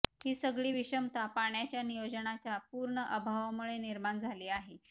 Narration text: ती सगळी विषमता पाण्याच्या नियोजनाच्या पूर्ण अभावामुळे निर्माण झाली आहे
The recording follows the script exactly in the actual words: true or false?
false